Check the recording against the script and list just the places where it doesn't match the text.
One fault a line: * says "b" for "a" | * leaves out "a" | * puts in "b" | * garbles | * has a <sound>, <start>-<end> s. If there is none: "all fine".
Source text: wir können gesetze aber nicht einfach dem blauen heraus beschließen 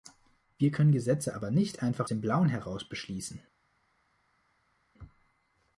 all fine